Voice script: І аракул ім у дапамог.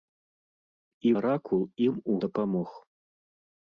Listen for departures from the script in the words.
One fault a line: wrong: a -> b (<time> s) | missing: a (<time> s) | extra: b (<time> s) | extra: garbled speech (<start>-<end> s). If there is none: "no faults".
no faults